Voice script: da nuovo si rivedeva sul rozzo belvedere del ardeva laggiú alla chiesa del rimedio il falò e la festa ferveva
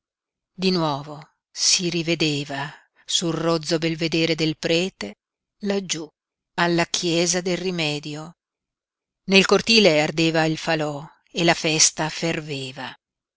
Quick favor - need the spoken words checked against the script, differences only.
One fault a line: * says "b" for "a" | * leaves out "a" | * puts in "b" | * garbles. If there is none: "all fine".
* says "di" for "da"
* says "prete" for "ardeva"
* puts in "nel cortile ardeva"